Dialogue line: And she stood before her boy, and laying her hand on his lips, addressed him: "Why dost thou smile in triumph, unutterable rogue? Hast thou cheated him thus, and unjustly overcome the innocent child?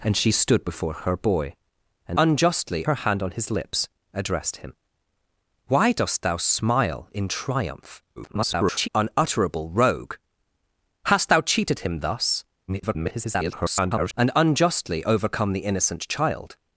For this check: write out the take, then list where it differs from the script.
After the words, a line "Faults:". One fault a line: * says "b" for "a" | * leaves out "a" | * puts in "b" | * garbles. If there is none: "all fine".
And she stood before her boy, and unjustly her hand on his lips, addressed him: "Why dost thou smile in triumph, [garbled] unutterable rogue? Hast thou cheated him thus, [garbled] and unjustly overcome the innocent child?
Faults:
* says "unjustly" for "laying"
* garbles
* garbles